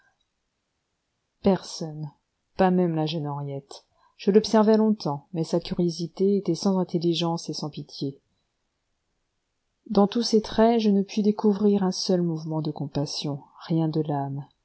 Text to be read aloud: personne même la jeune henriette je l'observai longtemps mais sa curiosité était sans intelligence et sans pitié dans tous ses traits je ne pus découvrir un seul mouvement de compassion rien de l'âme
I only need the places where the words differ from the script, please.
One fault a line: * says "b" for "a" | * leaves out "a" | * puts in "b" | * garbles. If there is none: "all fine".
* puts in "pas"